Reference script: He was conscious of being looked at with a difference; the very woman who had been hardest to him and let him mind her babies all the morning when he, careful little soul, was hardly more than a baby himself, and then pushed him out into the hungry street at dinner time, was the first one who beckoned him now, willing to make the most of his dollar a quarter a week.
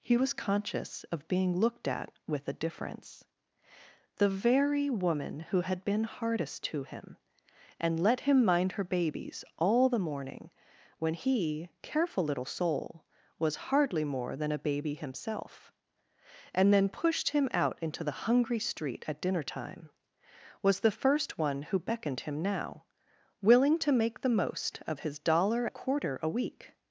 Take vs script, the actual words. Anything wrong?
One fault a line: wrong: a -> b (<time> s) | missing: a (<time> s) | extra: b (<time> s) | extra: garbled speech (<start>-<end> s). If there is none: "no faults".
no faults